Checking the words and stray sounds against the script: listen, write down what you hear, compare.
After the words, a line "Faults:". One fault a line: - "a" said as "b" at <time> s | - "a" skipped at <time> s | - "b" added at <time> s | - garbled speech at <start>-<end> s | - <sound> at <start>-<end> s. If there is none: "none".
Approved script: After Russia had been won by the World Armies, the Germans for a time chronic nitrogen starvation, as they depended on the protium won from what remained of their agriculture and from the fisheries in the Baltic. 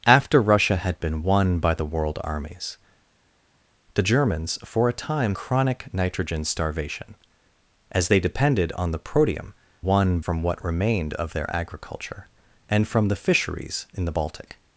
After Russia had been won by the World Armies, the Germans for a time chronic nitrogen starvation, as they depended on the protium won from what remained of their agriculture and from the fisheries in the Baltic.
Faults:
none